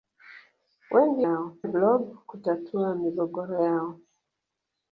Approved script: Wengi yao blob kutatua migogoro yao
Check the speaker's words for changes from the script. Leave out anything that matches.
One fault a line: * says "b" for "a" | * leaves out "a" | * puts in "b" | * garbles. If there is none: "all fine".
all fine